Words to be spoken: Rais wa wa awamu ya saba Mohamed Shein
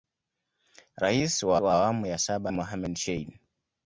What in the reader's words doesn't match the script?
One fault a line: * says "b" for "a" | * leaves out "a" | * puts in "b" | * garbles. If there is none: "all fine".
all fine